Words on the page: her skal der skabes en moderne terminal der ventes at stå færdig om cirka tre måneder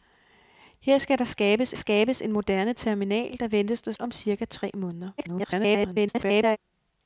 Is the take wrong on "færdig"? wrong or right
wrong